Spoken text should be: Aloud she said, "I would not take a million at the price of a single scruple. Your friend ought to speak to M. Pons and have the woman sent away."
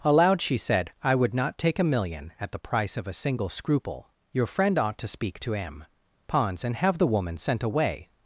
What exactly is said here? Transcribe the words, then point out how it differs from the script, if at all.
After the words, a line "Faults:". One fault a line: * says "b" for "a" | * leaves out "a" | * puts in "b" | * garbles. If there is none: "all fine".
Aloud she said, "I would not take a million at the price of a single scruple. Your friend ought to speak to M. Pons and have the woman sent away."
Faults:
all fine